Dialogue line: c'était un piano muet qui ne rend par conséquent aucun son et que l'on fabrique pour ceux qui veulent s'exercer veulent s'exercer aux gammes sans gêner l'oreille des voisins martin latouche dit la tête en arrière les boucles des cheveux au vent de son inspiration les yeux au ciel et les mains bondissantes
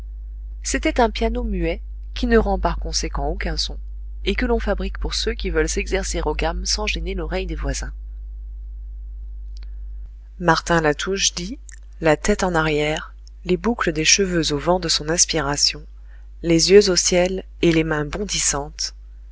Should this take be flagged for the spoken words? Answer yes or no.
yes